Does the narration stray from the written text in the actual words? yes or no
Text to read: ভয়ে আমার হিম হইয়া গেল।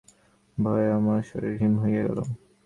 yes